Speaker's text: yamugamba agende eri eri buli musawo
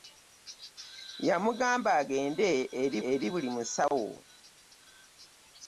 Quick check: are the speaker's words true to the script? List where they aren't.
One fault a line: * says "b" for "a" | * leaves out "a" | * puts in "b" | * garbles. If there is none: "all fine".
all fine